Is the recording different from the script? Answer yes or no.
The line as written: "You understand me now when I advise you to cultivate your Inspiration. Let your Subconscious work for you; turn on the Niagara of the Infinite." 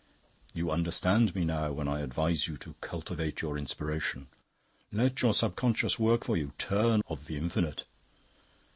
yes